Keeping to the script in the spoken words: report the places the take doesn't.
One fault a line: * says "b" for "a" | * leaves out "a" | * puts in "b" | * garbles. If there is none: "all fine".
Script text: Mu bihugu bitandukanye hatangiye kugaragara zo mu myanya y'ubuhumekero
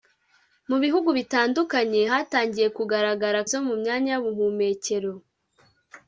all fine